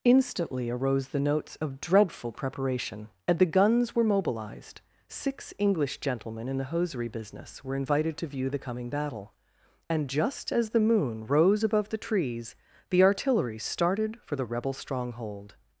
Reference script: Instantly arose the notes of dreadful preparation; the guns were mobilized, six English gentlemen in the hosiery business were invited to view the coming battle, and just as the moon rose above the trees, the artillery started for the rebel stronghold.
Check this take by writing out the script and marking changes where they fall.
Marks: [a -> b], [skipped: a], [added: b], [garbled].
Instantly arose the notes of dreadful preparation; [added: and] the guns were mobilized, six English gentlemen in the hosiery business were invited to view the coming battle, and just as the moon rose above the trees, the artillery started for the rebel stronghold.